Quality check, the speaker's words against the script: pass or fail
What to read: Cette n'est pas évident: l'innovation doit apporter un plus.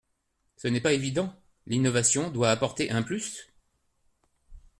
fail